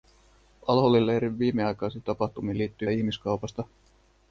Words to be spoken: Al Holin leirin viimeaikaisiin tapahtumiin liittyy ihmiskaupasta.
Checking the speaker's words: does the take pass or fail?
pass